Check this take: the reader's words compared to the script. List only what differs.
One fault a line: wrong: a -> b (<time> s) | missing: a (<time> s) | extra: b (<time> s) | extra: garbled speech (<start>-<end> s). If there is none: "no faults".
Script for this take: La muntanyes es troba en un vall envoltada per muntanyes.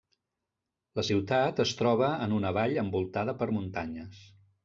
wrong: muntanyes -> ciutat (1.1 s)
wrong: un -> una (2.4 s)